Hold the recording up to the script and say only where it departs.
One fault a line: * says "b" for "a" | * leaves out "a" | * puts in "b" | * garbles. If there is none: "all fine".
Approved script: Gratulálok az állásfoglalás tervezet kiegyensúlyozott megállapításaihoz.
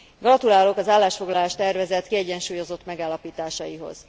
all fine